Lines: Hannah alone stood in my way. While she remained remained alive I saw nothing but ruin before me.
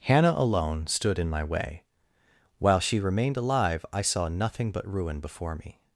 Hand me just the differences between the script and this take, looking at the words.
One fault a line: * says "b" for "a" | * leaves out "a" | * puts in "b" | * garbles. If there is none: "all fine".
* leaves out "remained"